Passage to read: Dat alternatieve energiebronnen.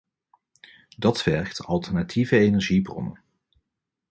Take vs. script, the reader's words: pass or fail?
fail